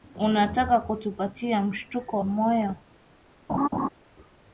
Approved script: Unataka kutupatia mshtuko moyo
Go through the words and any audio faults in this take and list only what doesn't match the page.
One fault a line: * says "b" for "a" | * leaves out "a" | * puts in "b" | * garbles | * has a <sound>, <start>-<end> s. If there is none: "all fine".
* has a laugh, 3.5-3.9 s